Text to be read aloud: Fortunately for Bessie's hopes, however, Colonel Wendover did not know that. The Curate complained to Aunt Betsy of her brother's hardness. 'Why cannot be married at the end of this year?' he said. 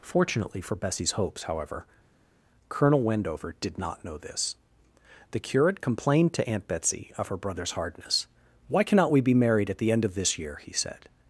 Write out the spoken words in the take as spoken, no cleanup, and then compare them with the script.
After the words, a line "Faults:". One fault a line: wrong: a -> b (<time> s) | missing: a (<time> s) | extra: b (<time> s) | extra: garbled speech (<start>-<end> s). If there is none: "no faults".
Fortunately for Bessie's hopes, however, Colonel Wendover did not know this. The Curate complained to Aunt Betsy of her brother's hardness. 'Why cannot we be married at the end of this year?' he said.
Faults:
wrong: that -> this (4.2 s)
extra: we (9.1 s)